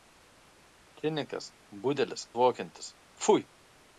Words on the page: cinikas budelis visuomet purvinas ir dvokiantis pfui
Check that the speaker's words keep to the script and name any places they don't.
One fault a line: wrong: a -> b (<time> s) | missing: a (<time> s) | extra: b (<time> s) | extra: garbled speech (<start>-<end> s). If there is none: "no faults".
missing: visuomet purvinas ir (2.3 s)